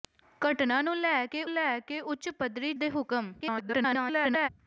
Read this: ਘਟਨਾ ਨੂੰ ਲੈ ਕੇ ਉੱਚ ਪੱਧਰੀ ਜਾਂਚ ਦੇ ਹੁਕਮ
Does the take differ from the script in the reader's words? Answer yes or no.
yes